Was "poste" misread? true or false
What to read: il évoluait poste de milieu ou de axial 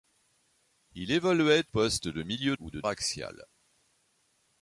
false